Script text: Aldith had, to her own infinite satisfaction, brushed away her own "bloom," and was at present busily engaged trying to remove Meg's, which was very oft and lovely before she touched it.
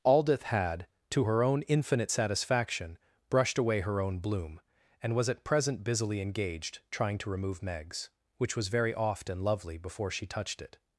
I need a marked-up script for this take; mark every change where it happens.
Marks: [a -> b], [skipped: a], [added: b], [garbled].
Aldith had, to her own infinite satisfaction, brushed away her own "bloom," and was at present busily engaged trying to remove Meg's, which was very oft and lovely before she touched it.